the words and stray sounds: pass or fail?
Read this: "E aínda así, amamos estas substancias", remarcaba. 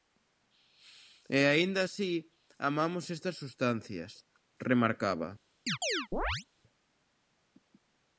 fail